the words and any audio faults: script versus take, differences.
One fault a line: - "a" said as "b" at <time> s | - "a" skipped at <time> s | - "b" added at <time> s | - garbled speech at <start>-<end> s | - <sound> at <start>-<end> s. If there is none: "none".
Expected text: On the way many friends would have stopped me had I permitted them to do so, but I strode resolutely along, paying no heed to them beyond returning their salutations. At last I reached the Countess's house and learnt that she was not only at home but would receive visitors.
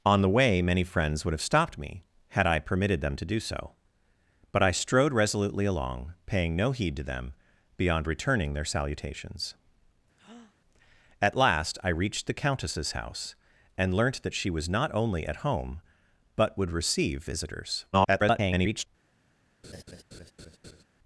- breath at 10.2-10.6 s
- garbled speech at 17.9-18.9 s
- laugh at 19.6-20.8 s